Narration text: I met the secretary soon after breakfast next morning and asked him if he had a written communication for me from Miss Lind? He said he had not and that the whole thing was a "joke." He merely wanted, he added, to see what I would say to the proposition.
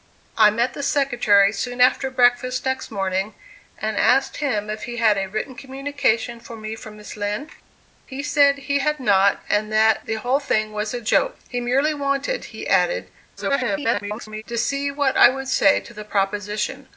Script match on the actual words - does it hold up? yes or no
no